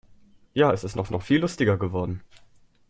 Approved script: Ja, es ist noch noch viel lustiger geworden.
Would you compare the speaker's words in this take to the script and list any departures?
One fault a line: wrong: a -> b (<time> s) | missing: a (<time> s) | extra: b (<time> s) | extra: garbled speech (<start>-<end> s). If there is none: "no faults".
no faults